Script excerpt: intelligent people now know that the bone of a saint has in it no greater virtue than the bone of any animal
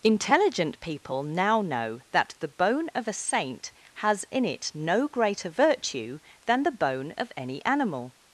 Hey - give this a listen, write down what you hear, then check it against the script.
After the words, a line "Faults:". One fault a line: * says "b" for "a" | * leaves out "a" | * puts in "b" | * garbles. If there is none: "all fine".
intelligent people now know that the bone of a saint has in it no greater virtue than the bone of any animal
Faults:
all fine